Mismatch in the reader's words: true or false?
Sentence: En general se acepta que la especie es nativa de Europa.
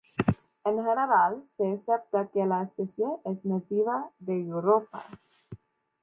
false